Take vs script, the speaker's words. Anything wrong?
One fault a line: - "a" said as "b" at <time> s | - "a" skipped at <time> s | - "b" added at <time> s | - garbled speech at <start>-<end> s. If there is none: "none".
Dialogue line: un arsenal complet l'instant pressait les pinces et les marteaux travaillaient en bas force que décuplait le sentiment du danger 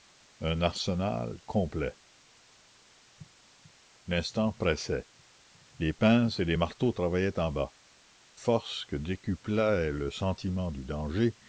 none